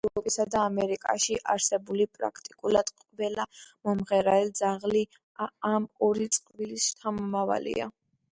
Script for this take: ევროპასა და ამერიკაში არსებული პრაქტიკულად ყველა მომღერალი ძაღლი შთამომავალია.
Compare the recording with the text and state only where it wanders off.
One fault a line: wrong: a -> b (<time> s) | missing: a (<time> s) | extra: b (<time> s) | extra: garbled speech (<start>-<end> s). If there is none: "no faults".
extra: ამ ორი წყვილის (5.7 s)